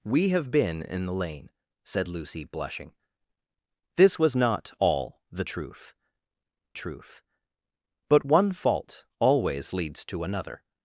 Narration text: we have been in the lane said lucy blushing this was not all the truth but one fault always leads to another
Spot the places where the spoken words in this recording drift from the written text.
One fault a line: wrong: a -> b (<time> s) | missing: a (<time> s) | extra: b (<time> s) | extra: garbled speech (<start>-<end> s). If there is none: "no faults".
extra: truth (6.7 s)